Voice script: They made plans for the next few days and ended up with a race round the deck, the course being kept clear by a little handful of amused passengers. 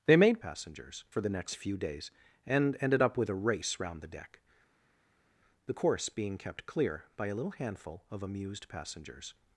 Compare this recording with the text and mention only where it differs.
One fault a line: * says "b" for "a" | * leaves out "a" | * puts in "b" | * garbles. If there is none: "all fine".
* says "passengers" for "plans"